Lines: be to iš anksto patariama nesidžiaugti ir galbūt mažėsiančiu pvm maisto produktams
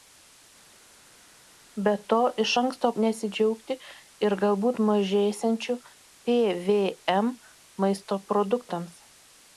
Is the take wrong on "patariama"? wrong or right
wrong